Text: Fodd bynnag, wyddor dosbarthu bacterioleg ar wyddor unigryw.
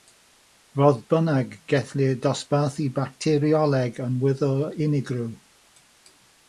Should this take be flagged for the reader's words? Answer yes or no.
yes